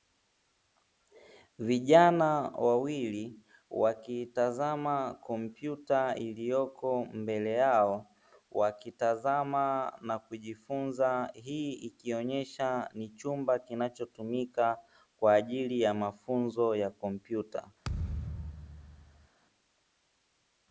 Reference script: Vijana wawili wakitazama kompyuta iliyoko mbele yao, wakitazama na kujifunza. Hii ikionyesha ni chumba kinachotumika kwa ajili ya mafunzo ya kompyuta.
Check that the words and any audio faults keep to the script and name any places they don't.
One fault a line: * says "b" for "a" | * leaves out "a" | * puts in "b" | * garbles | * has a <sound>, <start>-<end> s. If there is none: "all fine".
* has a thud, 17.8-19.3 s